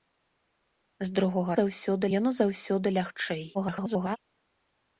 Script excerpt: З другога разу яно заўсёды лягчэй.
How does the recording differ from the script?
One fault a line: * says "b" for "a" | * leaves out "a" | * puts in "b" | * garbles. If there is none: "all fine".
* says "заўсёды" for "разу"
* garbles